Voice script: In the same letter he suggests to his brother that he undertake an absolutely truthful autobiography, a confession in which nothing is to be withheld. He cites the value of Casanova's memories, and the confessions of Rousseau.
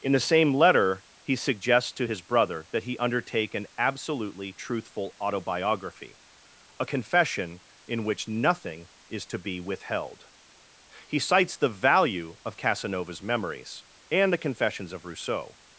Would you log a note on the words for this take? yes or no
no